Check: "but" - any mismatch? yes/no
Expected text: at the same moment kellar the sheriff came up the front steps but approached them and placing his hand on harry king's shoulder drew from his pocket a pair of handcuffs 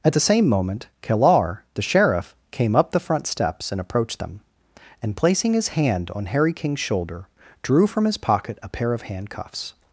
yes